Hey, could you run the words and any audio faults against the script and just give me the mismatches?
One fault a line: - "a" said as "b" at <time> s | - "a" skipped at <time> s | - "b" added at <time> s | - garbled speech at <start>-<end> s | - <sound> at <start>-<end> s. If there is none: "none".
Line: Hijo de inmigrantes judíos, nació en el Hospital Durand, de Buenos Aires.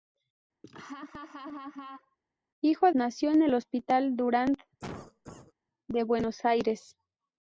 - laugh at 0.6-2.2 s
- "de inmigrantes judíos" skipped at 2.9 s
- cough at 4.8-5.5 s